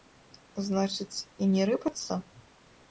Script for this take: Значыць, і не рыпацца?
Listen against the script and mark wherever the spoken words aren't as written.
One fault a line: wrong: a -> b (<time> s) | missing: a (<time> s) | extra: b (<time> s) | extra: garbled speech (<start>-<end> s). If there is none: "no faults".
no faults